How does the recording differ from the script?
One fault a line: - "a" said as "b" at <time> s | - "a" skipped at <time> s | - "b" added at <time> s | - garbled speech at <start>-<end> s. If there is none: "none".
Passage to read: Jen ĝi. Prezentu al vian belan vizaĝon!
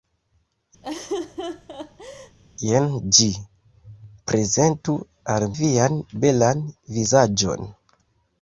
none